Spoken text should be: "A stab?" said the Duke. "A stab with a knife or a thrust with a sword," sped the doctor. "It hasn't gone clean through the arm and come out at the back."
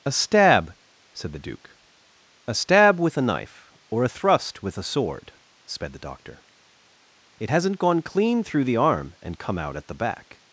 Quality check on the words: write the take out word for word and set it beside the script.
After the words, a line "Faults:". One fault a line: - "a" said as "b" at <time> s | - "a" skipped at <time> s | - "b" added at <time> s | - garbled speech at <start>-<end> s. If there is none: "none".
"A stab?" said the Duke. "A stab with a knife or a thrust with a sword," sped the doctor. "It hasn't gone clean through the arm and come out at the back."
Faults:
none